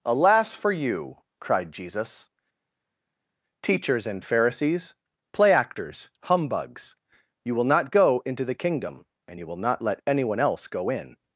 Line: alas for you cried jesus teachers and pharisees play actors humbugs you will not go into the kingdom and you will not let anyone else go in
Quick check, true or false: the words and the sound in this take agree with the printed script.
true